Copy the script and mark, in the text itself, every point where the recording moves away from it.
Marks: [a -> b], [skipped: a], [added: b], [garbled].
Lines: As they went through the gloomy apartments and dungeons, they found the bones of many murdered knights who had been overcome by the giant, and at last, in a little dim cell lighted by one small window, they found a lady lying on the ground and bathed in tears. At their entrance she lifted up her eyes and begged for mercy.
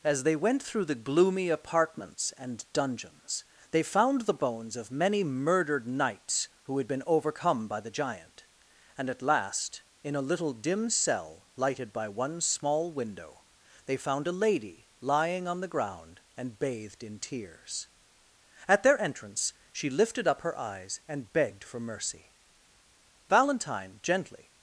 As they went through the gloomy apartments and dungeons, they found the bones of many murdered knights who had been overcome by the giant, and at last, in a little dim cell lighted by one small window, they found a lady lying on the ground and bathed in tears. At their entrance she lifted up her eyes and begged for mercy. [added: Valentine gently]